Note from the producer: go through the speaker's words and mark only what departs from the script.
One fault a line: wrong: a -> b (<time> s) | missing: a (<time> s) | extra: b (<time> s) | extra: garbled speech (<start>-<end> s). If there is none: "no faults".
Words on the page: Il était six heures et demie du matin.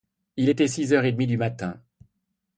no faults